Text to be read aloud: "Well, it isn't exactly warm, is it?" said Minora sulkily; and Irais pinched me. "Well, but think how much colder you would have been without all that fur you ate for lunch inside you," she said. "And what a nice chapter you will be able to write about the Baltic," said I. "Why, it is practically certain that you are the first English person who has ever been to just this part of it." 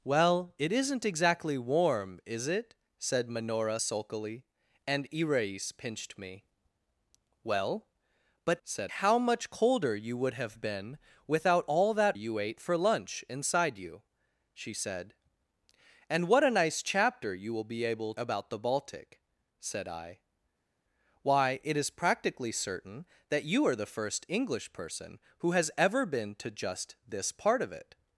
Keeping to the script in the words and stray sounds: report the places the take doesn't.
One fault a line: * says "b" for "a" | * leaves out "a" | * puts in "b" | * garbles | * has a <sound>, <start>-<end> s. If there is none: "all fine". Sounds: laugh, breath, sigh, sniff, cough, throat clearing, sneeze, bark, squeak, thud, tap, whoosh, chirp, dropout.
* says "said" for "think"
* leaves out "fur"
* leaves out "to write"